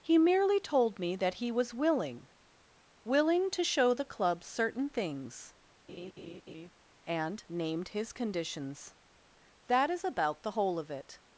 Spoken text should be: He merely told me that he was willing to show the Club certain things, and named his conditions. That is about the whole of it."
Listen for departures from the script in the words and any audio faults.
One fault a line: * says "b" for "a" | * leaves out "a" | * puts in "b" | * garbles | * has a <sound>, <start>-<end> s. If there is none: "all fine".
* puts in "willing"
* has a laugh, 5.9-6.7 s